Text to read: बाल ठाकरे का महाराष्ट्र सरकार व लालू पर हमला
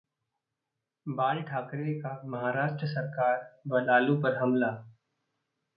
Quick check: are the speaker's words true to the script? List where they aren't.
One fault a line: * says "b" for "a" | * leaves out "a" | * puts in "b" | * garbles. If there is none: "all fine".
all fine